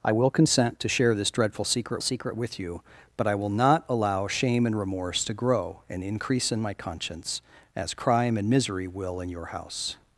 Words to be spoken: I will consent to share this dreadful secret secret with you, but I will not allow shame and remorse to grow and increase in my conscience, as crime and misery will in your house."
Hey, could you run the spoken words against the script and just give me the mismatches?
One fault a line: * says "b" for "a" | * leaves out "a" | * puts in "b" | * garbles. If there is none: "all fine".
all fine